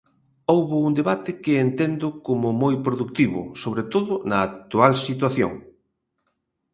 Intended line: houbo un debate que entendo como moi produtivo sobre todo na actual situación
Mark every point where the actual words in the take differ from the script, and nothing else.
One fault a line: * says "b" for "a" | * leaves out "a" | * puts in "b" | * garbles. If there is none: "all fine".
all fine